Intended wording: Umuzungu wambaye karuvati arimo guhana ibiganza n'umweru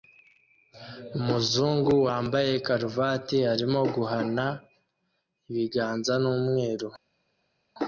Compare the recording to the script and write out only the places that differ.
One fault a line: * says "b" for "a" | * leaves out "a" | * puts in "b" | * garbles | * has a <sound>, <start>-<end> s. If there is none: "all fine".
all fine